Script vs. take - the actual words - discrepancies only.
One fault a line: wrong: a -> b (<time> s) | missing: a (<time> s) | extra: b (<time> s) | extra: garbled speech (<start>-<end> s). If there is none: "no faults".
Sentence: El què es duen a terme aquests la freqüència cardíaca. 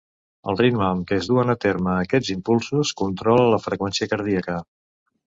extra: ritme amb (0.6 s)
extra: impulsos controla (2.3 s)